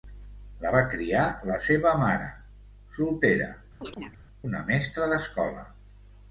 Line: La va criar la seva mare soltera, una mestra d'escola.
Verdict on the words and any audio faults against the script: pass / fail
fail